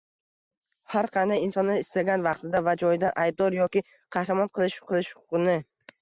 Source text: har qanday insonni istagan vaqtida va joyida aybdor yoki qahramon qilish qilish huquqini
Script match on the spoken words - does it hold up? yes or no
yes